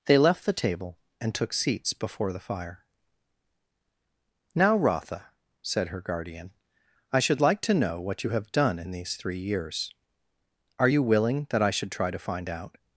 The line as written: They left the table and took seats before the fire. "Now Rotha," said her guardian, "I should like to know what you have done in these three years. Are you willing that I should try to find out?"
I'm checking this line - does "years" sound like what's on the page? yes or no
yes